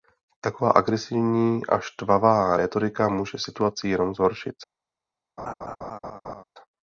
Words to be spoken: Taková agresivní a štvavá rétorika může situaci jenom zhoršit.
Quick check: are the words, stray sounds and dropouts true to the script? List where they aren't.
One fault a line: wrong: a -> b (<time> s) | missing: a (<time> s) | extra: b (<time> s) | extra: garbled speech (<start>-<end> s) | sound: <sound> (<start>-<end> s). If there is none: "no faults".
sound: laugh (5.4-6.4 s)